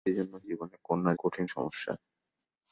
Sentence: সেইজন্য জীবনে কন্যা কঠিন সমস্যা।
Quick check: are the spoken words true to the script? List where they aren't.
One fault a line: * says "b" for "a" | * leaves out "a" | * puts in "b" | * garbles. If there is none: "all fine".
all fine